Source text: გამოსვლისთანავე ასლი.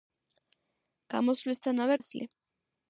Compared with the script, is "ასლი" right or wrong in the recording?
right